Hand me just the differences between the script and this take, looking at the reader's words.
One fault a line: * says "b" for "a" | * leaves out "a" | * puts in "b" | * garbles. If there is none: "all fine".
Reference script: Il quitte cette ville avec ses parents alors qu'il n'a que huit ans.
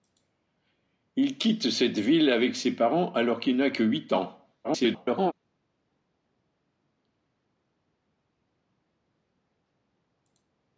* garbles